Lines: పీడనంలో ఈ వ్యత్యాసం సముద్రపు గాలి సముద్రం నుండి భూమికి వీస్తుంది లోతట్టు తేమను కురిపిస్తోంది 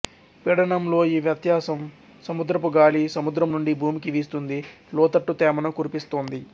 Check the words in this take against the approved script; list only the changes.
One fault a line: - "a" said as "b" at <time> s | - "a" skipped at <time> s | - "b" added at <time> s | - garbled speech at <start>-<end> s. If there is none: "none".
none